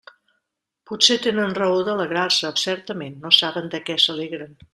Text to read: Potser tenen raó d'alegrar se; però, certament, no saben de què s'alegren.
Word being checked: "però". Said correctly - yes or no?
no